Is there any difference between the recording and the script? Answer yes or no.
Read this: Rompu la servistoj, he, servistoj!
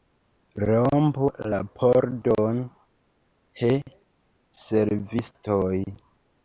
yes